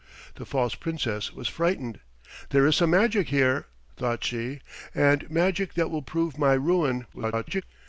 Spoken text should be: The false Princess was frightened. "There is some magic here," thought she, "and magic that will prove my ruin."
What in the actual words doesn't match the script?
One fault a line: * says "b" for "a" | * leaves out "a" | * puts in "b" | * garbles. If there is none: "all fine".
* garbles